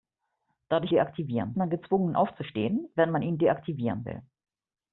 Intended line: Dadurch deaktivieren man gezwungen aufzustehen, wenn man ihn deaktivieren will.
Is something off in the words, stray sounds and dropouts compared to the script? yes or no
no